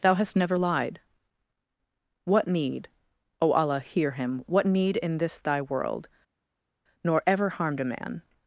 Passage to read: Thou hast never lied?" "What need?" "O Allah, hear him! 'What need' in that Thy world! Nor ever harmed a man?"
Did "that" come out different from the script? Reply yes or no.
yes